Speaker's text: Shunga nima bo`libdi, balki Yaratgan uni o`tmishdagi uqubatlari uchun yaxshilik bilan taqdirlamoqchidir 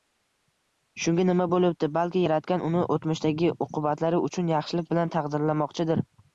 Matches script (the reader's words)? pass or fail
pass